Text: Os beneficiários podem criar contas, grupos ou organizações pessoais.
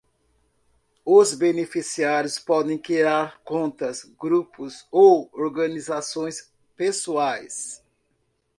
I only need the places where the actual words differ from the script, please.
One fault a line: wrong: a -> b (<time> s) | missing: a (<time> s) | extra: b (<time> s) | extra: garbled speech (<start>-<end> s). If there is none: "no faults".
no faults